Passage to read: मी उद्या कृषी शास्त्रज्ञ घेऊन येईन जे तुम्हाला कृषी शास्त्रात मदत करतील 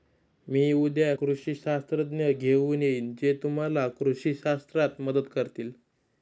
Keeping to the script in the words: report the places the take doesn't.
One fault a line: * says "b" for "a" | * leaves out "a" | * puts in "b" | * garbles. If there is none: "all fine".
all fine